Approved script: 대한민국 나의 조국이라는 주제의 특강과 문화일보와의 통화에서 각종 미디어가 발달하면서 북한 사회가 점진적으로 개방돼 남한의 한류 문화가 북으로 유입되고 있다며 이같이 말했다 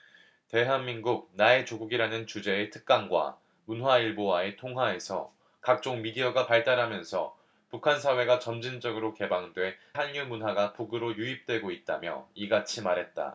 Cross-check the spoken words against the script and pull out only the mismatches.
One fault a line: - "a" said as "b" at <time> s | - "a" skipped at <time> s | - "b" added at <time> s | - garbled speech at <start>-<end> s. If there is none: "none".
- "남한의" skipped at 9.8 s